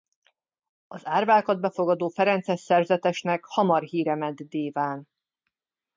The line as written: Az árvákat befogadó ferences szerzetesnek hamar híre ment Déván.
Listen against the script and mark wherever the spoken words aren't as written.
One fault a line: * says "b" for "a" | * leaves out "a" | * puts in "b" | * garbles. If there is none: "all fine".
all fine